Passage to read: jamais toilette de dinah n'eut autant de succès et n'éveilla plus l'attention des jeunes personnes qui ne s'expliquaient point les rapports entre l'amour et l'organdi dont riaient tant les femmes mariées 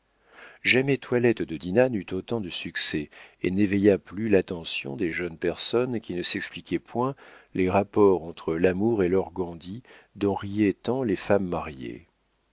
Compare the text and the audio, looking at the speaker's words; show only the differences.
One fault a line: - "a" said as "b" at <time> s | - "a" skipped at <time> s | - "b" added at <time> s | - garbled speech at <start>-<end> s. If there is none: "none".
none